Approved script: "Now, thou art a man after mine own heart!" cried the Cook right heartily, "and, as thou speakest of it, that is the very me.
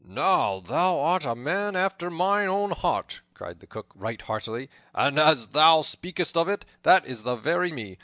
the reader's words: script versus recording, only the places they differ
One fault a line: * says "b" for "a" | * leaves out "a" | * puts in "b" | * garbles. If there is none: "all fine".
all fine